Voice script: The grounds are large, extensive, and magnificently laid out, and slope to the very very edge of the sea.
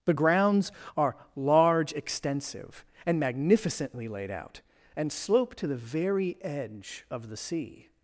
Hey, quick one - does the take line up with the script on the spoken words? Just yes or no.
no